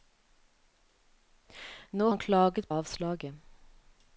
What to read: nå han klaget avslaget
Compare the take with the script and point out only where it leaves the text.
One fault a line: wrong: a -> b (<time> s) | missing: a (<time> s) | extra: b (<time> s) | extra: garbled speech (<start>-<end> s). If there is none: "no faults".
no faults